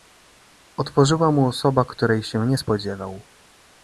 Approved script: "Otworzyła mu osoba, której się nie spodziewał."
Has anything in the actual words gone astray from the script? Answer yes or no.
no